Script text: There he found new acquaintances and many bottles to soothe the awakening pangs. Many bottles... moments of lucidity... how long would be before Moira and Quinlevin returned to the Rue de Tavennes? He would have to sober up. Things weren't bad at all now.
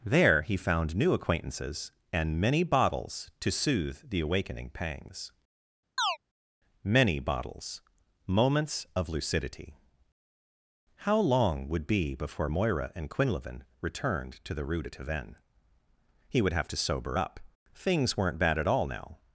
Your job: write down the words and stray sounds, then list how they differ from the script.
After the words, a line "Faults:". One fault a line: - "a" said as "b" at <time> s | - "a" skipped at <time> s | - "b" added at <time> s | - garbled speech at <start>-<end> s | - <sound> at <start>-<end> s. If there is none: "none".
There he found new acquaintances and many bottles to soothe the awakening pangs. Many bottles... moments of lucidity... how long would be before Moira and Quinlevin returned to the Rue de Tavennes? He would have to sober up. Things weren't bad at all now.
Faults:
- chirp at 6.0-6.2 s